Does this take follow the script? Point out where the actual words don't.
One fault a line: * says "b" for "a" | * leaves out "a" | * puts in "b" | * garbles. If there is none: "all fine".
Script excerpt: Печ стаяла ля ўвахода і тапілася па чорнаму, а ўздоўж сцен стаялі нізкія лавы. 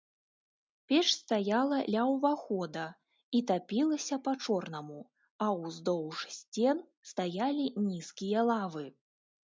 all fine